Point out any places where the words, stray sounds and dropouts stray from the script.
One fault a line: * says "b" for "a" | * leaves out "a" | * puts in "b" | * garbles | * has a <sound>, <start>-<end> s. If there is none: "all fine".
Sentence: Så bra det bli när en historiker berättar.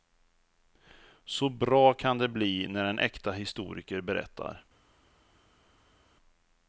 * puts in "kan"
* puts in "äkta"